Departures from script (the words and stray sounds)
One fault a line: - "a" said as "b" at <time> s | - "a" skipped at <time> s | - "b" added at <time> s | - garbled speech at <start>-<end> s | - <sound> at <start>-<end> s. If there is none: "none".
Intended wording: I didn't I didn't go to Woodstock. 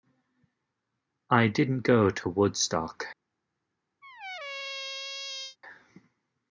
- "I didn't" skipped at 1.8 s
- squeak at 4.0-5.6 s